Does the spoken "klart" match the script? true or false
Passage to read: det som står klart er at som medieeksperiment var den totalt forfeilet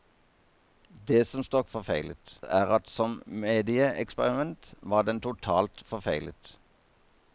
false